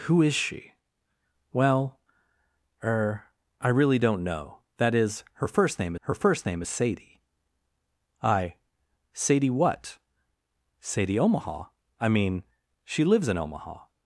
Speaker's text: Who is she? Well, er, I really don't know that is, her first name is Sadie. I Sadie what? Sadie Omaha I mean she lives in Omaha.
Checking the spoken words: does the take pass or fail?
fail